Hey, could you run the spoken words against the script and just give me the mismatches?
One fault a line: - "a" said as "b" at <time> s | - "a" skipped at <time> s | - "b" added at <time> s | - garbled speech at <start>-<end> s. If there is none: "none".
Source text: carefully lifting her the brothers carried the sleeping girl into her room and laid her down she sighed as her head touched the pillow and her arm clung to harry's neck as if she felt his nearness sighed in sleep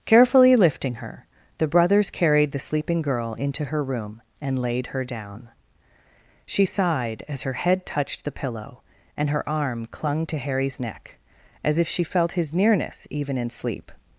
- "sighed" said as "even" at 13.1 s